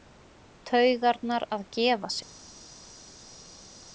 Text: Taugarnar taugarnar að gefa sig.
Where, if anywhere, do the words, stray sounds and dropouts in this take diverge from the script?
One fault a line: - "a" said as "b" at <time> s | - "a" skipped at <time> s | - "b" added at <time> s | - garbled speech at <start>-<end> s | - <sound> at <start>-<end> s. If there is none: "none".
- "taugarnar" skipped at 1.5 s